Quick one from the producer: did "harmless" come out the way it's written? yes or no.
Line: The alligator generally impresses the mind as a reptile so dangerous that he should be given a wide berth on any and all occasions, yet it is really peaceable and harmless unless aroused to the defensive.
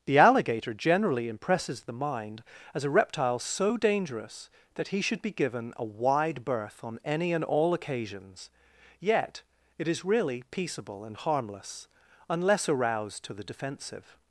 yes